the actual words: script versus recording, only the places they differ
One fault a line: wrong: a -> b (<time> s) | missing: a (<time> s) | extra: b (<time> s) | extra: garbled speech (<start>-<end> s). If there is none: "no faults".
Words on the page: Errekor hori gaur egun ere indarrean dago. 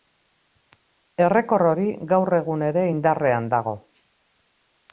no faults